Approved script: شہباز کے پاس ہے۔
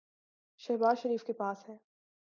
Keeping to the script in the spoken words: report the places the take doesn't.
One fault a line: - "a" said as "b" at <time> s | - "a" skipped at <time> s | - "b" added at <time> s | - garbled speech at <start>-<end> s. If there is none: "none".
- "شریف" added at 1.0 s